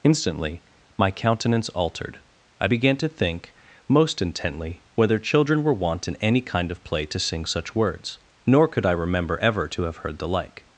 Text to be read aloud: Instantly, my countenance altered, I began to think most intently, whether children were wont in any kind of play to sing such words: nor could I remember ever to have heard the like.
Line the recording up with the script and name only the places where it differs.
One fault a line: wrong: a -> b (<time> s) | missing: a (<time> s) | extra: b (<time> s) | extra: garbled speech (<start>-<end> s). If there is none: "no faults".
no faults